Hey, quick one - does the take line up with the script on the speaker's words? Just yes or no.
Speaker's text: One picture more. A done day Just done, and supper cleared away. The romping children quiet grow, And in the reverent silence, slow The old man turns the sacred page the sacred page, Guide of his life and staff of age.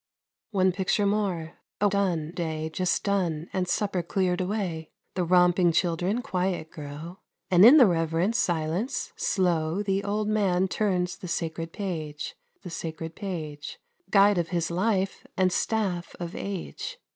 yes